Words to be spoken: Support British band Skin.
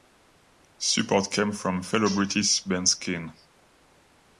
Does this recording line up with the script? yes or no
no